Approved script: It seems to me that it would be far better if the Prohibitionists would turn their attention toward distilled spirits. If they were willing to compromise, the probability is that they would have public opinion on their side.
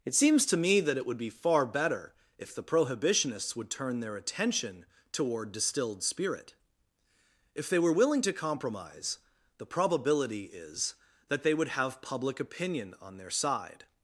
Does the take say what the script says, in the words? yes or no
no